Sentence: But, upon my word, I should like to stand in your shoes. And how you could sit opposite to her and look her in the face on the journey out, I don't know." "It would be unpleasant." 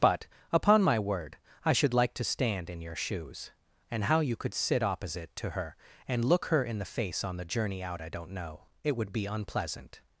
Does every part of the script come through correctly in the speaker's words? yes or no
yes